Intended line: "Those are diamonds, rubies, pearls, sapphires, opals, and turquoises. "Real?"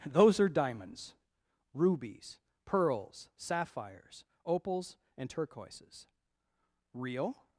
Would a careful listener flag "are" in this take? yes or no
no